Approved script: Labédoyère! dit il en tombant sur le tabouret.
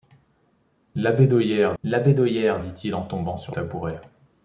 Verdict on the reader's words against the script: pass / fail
fail